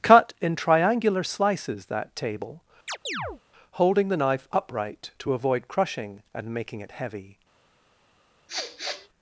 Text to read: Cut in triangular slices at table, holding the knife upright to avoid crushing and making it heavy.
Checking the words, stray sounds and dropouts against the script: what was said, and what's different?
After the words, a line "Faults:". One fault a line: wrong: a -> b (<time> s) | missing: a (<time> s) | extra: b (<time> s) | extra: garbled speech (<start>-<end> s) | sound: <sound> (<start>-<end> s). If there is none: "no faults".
Cut in triangular slices that table, holding the knife upright to avoid crushing and making it heavy.
Faults:
wrong: at -> that (1.9 s)
sound: chirp (2.9-3.4 s)
sound: sniff (8.5-9.1 s)